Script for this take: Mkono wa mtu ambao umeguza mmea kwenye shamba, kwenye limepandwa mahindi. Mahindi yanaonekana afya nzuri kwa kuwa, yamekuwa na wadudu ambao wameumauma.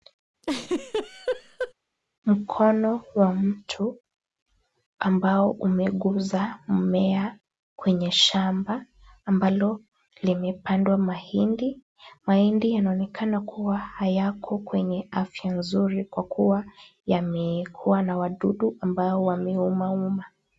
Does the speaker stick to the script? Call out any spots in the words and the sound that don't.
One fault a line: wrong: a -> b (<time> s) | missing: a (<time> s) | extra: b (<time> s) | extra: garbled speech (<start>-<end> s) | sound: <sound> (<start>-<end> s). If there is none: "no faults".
sound: laugh (0.4-1.7 s)
wrong: kwenye -> ambalo (9.3 s)
extra: kuwa hayako kwenye (13.4 s)